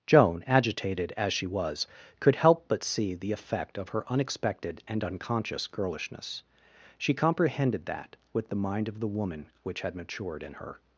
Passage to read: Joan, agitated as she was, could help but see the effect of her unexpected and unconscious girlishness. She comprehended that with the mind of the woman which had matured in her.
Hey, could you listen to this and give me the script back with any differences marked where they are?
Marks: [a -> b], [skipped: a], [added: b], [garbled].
Joan, agitated as she was, could help but see the effect of her unexpected and unconscious girlishness. She comprehended that with the mind of the woman which had matured in her.